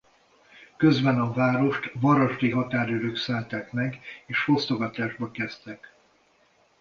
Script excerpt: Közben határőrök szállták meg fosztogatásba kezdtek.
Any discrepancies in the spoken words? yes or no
yes